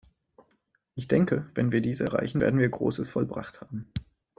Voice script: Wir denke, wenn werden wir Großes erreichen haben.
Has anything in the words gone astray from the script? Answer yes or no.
yes